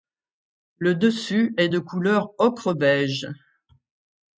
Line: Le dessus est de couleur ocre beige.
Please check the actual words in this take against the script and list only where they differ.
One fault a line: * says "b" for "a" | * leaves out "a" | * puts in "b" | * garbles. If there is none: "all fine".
all fine